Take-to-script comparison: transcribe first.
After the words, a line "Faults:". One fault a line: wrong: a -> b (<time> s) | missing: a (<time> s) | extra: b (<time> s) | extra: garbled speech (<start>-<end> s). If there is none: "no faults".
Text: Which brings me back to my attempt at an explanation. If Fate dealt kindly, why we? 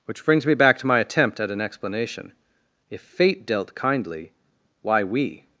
Which brings me back to my attempt at an explanation. If Fate dealt kindly, why we?
Faults:
no faults